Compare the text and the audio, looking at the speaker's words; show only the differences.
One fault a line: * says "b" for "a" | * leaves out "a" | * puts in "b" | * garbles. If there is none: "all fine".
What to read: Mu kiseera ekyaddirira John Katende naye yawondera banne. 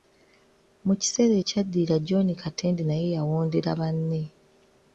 all fine